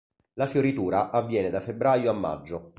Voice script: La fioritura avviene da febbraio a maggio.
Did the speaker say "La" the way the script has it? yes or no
yes